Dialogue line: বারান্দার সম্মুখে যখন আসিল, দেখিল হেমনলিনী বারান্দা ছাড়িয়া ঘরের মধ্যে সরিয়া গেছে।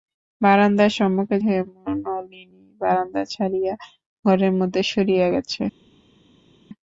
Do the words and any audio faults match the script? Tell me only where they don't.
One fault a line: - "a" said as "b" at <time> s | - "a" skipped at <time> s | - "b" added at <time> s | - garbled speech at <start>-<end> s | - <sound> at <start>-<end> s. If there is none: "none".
- "যখন আসিল দেখিল" skipped at 1.4 s